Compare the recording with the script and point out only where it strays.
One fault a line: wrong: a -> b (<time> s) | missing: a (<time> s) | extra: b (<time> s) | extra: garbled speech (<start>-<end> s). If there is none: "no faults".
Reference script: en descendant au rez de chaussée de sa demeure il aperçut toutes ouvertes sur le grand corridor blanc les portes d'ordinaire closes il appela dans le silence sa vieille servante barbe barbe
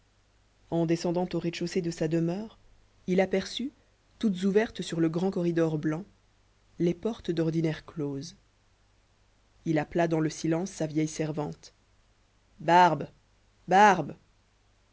no faults